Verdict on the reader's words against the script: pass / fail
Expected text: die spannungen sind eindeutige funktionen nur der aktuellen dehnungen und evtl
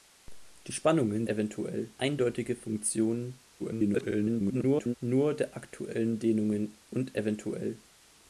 fail